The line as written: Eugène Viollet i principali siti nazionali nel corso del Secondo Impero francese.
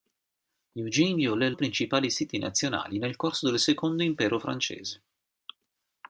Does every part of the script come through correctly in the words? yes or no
yes